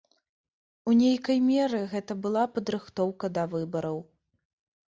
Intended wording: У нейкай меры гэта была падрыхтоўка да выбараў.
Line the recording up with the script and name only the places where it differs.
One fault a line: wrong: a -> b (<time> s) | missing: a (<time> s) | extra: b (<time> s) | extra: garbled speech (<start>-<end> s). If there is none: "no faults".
no faults